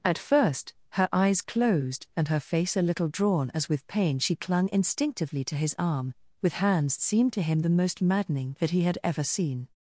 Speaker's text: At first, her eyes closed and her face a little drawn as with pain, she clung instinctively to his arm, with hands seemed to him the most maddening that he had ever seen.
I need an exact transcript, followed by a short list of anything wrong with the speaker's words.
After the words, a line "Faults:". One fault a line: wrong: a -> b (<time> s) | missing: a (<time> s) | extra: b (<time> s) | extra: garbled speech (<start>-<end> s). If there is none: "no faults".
At first, her eyes closed and her face a little drawn as with pain, she clung instinctively to his arm, with hands seemed to him the most maddening that he had ever seen.
Faults:
no faults